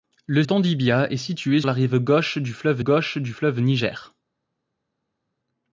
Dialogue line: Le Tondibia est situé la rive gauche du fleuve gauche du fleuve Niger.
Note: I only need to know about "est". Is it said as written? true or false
true